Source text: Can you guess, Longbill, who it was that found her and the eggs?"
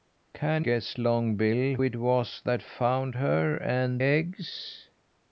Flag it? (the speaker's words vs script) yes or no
yes